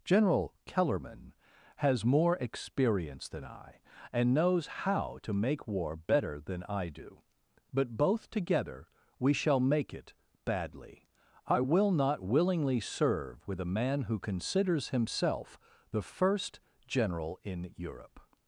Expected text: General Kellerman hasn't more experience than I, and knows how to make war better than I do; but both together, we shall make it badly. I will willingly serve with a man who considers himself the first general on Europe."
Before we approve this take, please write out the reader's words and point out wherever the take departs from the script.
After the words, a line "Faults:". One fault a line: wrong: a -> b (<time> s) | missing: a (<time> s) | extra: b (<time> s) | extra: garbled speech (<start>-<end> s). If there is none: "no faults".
General Kellerman has more experience than I, and knows how to make war better than I do; but both together, we shall make it badly. I will not willingly serve with a man who considers himself the first general in Europe."
Faults:
wrong: hasn't -> has (1.8 s)
extra: not (11.9 s)
wrong: on -> in (17.4 s)